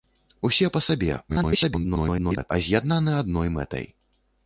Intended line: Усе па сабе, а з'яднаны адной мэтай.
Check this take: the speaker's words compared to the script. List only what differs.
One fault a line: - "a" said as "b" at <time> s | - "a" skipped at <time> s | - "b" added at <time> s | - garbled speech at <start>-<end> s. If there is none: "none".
- garbled speech at 1.3-2.5 s